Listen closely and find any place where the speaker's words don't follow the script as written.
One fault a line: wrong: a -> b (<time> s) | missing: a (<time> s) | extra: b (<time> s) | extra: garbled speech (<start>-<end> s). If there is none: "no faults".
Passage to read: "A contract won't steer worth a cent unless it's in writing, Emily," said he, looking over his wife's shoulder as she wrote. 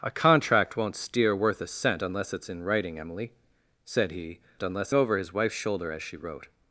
wrong: looking -> unless (4.6 s)